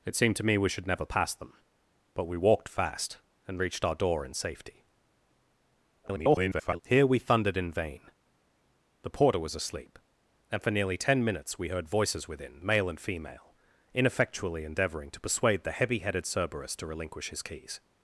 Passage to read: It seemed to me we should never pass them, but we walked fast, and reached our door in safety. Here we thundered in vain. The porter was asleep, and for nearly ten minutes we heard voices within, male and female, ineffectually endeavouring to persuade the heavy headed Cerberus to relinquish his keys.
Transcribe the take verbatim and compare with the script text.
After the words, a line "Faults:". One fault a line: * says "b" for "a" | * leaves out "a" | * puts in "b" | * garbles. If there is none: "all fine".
It seemed to me we should never pass them, but we walked fast, and reached our door in safety. [garbled] Here we thundered in vain. The porter was asleep, and for nearly ten minutes we heard voices within, male and female, ineffectually endeavouring to persuade the heavy headed Cerberus to relinquish his keys.
Faults:
* garbles